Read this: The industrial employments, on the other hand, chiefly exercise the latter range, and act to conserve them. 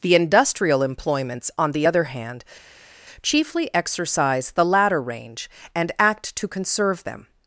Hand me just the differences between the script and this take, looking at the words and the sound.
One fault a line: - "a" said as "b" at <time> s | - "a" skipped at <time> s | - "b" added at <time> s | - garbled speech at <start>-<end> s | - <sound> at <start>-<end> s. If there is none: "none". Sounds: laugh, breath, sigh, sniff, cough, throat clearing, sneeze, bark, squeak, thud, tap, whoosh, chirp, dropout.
none